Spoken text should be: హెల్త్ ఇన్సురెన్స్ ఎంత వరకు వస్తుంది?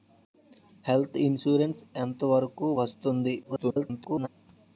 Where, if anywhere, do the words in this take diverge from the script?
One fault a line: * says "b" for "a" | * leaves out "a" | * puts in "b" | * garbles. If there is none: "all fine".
* garbles